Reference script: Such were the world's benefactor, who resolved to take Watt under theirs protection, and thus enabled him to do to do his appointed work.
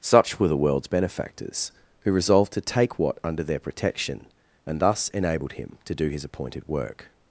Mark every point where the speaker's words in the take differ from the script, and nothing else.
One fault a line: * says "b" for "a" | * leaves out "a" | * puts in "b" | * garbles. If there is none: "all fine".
* says "benefactors" for "benefactor"
* says "their" for "theirs"
* leaves out "to do"